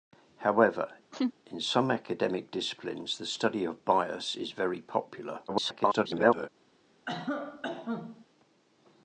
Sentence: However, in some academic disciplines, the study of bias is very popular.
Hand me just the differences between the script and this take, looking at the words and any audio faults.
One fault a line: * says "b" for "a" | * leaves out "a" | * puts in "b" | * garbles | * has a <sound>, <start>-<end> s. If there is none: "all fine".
* has a laugh, 1.1-1.3 s
* garbles
* has a cough, 7.1-8.3 s